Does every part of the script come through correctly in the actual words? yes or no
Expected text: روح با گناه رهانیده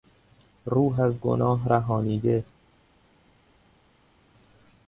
no